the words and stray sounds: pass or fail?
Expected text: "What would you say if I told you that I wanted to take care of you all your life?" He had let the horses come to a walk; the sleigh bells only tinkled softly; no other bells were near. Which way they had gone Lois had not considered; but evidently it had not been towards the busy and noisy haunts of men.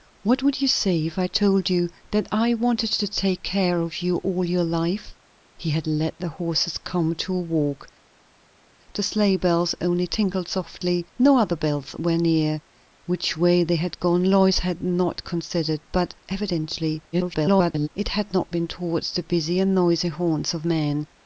fail